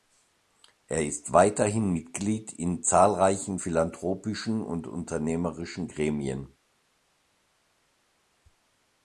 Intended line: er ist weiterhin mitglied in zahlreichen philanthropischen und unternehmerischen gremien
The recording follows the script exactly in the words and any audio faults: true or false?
true